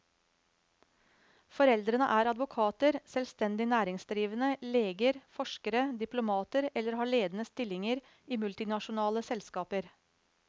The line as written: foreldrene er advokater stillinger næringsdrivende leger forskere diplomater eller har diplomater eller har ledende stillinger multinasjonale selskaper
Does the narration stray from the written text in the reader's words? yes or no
yes